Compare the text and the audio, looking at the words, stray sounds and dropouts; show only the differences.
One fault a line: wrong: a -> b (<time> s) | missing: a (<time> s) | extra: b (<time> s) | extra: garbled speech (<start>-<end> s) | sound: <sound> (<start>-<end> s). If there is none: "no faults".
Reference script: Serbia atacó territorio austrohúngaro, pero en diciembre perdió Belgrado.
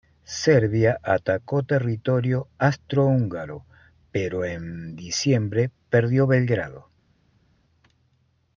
no faults